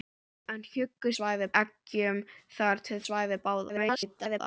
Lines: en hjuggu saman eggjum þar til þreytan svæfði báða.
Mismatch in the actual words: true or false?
true